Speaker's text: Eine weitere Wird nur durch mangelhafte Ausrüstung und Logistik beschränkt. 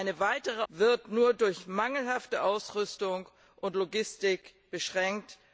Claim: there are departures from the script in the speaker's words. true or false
false